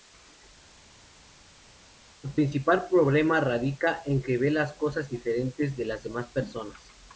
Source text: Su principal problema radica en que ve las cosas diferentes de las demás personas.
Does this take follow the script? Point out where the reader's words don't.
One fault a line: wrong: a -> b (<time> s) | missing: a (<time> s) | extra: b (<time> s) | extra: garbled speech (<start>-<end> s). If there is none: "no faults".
no faults